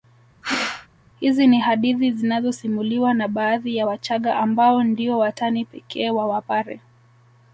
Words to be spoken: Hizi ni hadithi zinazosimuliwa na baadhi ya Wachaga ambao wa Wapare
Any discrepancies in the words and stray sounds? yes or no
yes